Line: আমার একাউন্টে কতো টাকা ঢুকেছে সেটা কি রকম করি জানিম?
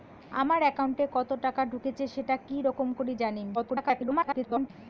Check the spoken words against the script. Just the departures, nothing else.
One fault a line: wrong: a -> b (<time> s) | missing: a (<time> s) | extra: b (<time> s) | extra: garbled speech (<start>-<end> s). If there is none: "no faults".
extra: garbled speech (3.5-4.7 s)